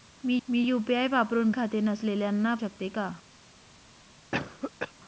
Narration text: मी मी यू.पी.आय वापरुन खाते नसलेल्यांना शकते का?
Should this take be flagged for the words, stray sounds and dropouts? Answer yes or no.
yes